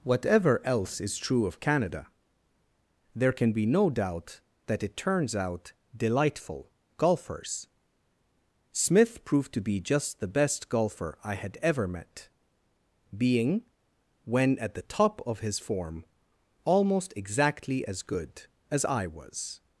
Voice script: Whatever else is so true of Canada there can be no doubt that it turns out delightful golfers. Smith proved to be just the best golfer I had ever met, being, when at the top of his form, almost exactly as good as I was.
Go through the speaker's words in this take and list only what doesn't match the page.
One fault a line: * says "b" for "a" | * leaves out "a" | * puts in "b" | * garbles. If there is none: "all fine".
* leaves out "so"